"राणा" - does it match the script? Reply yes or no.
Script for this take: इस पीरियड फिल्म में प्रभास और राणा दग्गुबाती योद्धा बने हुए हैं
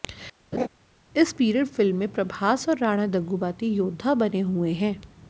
yes